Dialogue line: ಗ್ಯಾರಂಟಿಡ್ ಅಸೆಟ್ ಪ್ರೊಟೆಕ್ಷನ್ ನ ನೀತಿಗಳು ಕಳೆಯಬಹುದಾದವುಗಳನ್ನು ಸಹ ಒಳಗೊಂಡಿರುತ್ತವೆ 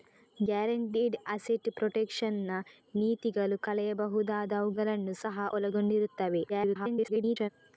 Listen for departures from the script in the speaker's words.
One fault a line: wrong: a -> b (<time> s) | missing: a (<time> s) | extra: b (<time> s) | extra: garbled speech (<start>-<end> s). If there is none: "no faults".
extra: garbled speech (6.5-7.5 s)